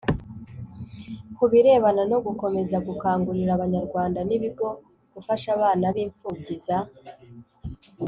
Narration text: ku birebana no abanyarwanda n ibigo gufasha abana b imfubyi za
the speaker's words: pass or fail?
fail